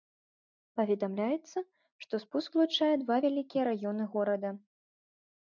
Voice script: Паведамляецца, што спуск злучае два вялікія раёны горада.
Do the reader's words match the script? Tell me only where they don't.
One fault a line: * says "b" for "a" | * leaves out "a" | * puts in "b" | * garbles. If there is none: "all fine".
all fine